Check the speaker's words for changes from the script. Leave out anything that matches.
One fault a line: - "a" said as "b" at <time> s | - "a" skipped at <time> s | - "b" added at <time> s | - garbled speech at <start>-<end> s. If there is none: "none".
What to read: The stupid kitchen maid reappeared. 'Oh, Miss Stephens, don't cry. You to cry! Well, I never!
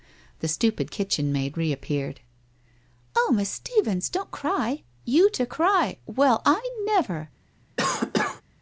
none